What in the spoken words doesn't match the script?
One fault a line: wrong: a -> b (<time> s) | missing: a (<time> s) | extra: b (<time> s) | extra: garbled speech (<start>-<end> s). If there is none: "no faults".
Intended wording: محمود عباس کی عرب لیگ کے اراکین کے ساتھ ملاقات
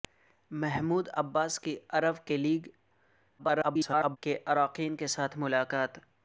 extra: garbled speech (3.4-4.2 s)